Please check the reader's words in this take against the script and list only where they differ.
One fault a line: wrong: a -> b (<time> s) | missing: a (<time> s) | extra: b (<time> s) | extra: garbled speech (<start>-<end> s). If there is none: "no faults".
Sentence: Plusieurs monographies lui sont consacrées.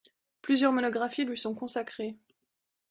no faults